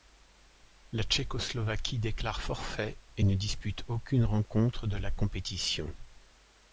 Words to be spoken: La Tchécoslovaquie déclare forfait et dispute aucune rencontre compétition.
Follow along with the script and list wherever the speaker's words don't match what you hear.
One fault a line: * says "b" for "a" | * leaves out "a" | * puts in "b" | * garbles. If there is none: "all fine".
* puts in "ne"
* puts in "de la"